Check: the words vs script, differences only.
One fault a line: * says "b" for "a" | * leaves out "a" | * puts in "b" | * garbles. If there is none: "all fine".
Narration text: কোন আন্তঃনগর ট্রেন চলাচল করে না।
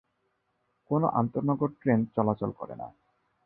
all fine